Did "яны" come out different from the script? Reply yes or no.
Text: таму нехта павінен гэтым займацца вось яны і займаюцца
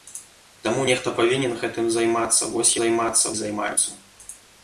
yes